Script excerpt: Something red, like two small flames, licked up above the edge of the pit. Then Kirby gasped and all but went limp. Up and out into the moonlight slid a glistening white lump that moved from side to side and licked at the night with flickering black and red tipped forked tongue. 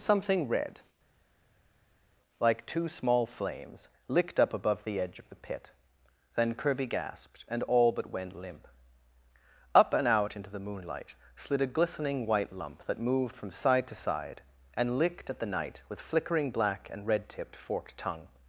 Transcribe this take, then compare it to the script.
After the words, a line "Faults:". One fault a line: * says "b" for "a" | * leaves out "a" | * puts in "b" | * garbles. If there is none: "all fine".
Something red, like two small flames, licked up above the edge of the pit. Then Kirby gasped and all but went limp. Up and out into the moonlight slid a glistening white lump that moved from side to side and licked at the night with flickering black and red tipped forked tongue.
Faults:
all fine